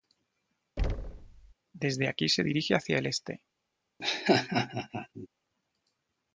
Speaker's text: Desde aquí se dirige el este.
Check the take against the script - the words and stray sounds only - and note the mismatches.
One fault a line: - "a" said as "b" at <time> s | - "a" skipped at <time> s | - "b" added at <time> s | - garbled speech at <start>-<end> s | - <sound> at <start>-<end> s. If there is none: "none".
- thud at 0.8-1.5 s
- "hacia" added at 2.7 s
- laugh at 4.0-5.3 s